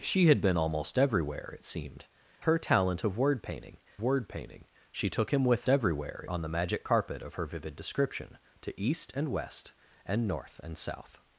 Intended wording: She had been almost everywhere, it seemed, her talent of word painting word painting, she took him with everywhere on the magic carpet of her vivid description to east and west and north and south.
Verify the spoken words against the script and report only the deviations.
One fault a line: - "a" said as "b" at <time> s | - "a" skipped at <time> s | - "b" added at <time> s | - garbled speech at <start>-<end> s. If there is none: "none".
none